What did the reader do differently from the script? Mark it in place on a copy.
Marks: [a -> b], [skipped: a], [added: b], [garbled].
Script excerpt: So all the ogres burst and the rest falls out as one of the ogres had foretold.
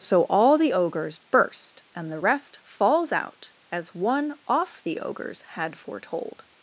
So all the ogres burst and the rest falls out as one [of -> off] the ogres had foretold.